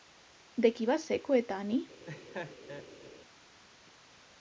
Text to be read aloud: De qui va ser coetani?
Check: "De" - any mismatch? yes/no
no